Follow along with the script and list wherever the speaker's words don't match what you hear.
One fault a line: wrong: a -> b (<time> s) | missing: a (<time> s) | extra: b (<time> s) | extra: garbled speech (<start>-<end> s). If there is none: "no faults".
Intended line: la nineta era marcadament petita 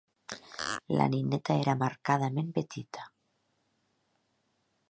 no faults